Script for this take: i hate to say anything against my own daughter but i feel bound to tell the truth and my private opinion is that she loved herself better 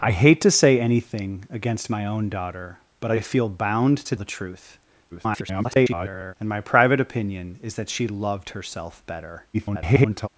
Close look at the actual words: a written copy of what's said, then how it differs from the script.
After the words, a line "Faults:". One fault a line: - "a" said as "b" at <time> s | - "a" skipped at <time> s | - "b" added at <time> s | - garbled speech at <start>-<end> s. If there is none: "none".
i hate to say anything against my own daughter but i feel bound to the truth [garbled] and my private opinion is that she loved herself better [garbled]
Faults:
- "tell" skipped at 4.1 s
- garbled speech at 5.1-6.3 s
- garbled speech at 9.5-10.3 s